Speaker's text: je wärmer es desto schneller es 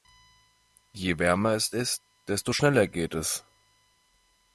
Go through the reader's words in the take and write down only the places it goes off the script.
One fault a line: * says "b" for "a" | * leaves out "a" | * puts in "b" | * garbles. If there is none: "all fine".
* puts in "ist"
* puts in "geht"